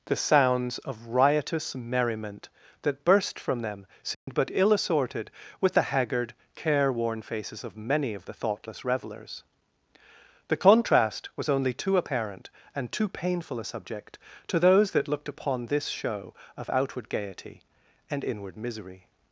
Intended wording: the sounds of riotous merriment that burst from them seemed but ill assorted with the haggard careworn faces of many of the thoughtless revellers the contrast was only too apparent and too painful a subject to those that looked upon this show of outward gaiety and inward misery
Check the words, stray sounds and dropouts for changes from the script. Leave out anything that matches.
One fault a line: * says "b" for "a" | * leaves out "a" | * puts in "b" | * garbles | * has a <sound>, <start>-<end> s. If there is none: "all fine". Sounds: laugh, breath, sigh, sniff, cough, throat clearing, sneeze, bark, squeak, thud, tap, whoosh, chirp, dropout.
* has a dropout, 4.1-4.3 s